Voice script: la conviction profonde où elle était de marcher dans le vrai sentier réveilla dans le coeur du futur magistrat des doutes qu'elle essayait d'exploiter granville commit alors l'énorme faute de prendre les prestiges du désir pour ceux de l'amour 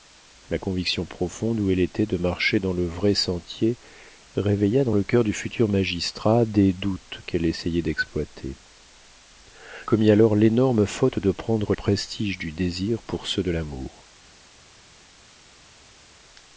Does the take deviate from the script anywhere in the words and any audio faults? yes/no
yes